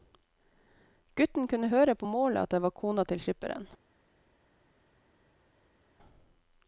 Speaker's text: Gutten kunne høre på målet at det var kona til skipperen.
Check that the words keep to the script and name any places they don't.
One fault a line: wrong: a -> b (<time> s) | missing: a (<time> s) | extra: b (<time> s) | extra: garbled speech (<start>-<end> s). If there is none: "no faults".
no faults